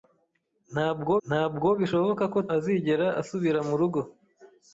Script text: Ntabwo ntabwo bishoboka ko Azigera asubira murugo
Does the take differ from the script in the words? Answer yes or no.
no